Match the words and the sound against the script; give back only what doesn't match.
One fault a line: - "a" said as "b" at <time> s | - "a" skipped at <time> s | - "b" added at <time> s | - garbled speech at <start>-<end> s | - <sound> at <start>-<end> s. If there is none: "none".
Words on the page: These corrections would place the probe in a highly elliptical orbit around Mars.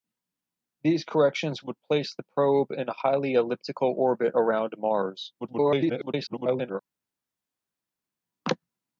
- garbled speech at 5.4-6.8 s